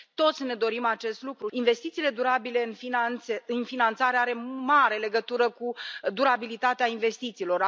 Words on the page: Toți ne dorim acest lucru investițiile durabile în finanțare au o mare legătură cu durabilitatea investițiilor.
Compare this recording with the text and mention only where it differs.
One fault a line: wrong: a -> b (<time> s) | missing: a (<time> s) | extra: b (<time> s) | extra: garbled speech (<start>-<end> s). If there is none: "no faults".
no faults